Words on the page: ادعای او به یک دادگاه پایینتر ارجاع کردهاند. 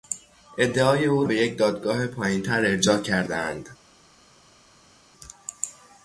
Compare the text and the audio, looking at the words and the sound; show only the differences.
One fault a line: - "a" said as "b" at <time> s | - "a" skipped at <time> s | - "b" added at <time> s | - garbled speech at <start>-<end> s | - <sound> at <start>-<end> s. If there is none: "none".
none